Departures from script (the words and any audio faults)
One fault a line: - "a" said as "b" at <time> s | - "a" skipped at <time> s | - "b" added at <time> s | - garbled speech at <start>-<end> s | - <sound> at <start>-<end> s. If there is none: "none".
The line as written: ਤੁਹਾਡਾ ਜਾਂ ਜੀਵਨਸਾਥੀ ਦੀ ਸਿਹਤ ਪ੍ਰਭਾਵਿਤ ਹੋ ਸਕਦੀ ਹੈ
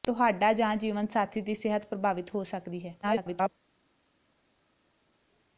- garbled speech at 3.0-3.5 s